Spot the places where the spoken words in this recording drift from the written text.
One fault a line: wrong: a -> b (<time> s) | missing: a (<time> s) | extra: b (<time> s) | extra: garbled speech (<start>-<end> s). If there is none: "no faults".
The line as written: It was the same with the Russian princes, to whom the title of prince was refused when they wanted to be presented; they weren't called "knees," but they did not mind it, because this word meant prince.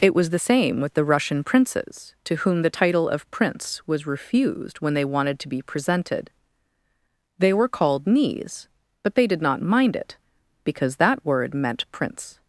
wrong: weren't -> were (7.5 s)
wrong: this -> that (11.0 s)